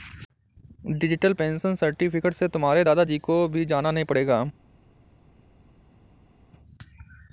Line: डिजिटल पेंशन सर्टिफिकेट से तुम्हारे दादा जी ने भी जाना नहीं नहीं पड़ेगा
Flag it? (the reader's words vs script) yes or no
yes